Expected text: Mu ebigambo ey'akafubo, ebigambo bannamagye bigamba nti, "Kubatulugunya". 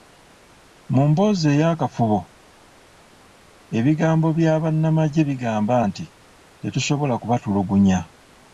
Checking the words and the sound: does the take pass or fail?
fail